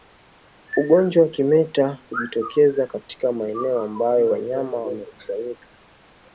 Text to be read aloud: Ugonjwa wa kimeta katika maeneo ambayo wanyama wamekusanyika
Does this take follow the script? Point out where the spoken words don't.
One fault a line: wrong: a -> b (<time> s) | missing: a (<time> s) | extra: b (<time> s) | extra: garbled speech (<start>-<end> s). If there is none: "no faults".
extra: hujitokeza (2.1 s)